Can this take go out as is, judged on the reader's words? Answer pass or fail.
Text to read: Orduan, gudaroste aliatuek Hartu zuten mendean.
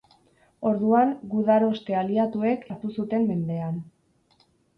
pass